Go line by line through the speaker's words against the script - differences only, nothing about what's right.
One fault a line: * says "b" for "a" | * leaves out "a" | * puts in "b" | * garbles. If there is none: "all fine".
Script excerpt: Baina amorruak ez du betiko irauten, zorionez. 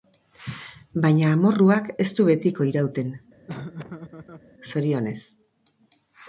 all fine